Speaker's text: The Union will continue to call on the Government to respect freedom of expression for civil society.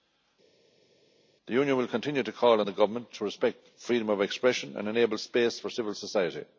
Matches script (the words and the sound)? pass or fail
fail